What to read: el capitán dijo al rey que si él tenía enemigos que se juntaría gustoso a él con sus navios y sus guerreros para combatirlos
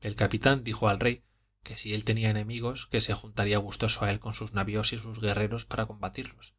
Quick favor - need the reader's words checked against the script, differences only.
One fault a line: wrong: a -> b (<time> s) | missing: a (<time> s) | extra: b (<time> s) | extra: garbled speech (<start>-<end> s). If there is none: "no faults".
no faults